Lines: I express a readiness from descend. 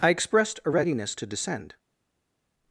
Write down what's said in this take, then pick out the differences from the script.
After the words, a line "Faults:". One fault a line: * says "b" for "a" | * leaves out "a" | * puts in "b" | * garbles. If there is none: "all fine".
I expressed a readiness to descend.
Faults:
* says "expressed" for "express"
* says "to" for "from"